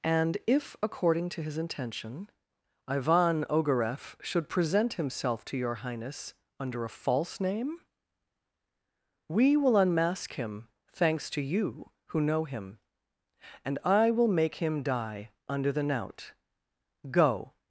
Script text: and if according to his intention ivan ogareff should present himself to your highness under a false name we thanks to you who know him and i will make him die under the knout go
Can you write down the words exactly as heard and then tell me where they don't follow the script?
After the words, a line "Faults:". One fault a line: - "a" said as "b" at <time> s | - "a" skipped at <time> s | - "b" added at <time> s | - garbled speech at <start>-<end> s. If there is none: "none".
and if according to his intention ivan ogareff should present himself to your highness under a false name we will unmask him thanks to you who know him and i will make him die under the knout go
Faults:
- "will unmask him" added at 9.6 s